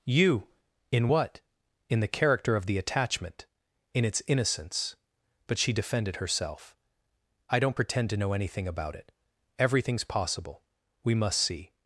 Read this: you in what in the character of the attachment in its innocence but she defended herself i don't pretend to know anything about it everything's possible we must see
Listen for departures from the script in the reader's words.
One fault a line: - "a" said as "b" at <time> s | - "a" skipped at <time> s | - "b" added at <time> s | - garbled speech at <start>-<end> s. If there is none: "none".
none